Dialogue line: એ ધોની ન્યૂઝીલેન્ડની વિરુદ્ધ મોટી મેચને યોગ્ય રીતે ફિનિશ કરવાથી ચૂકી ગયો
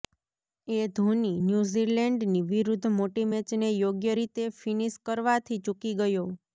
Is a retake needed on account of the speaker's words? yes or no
no